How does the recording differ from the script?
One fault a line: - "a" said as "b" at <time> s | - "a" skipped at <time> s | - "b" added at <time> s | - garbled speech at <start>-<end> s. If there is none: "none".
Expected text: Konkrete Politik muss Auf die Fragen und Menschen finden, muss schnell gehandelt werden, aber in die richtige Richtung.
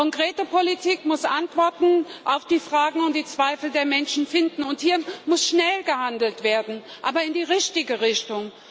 - "Antworten" added at 1.2 s
- "die Zweifel der" added at 3.1 s
- "und hier" added at 4.6 s